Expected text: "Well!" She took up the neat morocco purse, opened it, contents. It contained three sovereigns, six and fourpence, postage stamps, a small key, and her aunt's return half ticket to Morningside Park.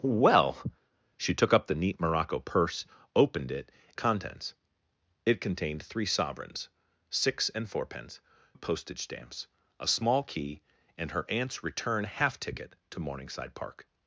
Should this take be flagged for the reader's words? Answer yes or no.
no